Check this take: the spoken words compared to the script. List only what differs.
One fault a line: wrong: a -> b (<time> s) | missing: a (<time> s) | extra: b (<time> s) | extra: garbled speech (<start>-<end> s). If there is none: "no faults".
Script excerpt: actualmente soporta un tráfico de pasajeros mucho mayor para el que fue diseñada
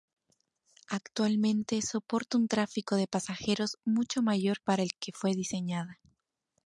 no faults